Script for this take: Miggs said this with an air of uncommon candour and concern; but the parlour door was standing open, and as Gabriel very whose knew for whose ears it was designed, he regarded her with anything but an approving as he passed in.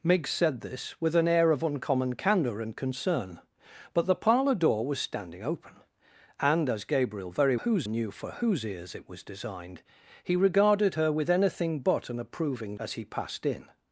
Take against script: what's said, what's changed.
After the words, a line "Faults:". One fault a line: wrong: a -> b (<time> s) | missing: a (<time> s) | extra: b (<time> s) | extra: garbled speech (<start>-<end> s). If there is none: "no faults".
Miggs said this with an air of uncommon candour and concern; but the parlour door was standing open, and as Gabriel very whose knew for whose ears it was designed, he regarded her with anything but an approving as he passed in.
Faults:
no faults